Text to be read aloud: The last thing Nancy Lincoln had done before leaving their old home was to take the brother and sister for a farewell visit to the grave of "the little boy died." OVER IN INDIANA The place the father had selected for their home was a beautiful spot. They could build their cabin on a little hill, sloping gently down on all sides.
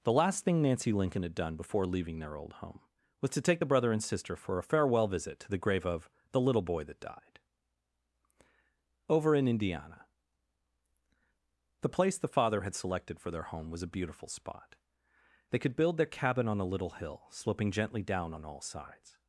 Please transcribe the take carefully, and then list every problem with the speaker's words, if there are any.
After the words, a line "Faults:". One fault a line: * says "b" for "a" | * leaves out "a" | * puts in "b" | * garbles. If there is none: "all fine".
The last thing Nancy Lincoln had done before leaving their old home was to take the brother and sister for a farewell visit to the grave of "the little boy that died." OVER IN INDIANA The place the father had selected for their home was a beautiful spot. They could build their cabin on a little hill, sloping gently down on all sides.
Faults:
* puts in "that"